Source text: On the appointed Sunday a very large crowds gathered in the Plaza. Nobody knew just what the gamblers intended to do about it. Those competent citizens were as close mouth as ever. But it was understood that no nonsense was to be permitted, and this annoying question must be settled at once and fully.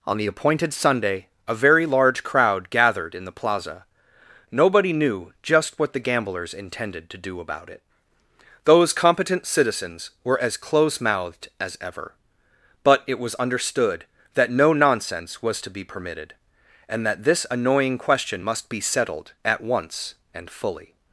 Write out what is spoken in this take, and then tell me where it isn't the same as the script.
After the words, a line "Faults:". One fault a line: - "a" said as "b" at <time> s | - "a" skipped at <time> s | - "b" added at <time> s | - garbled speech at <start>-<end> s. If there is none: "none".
On the appointed Sunday a very large crowd gathered in the Plaza. Nobody knew just what the gamblers intended to do about it. Those competent citizens were as close mouthed as ever. But it was understood that no nonsense was to be permitted, and that this annoying question must be settled at once and fully.
Faults:
- "crowds" said as "crowd" at 2.2 s
- "mouth" said as "mouthed" at 11.0 s
- "that" added at 17.1 s